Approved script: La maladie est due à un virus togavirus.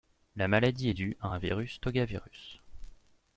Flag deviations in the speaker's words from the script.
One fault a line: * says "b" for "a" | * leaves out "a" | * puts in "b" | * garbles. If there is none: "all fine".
all fine